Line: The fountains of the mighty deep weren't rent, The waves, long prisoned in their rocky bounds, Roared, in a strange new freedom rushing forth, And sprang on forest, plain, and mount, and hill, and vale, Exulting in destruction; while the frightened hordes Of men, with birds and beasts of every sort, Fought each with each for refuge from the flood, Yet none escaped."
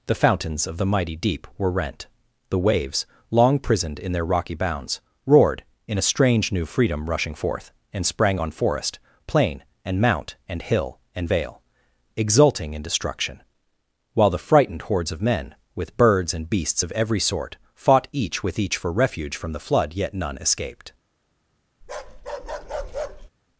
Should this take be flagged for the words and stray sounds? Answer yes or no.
yes